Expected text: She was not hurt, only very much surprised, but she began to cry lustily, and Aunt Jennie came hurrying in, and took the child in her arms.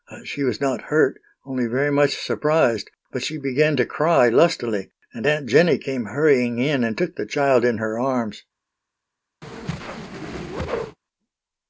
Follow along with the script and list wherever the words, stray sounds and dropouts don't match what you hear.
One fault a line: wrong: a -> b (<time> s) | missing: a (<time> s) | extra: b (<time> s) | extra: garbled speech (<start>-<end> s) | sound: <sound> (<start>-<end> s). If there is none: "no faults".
sound: whoosh (9.4-11.0 s)